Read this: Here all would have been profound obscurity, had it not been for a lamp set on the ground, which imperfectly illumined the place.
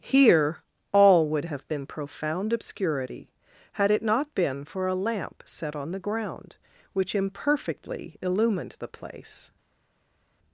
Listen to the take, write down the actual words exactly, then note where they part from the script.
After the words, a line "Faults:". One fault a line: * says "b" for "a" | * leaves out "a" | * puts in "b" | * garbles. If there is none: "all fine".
Here all would have been profound obscurity, had it not been for a lamp set on the ground, which imperfectly illumined the place.
Faults:
all fine